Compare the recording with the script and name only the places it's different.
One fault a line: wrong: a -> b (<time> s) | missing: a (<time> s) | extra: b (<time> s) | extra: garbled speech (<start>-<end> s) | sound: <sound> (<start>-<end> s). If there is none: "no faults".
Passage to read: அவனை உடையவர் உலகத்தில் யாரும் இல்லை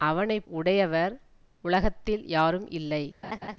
sound: laugh (3.2-3.6 s)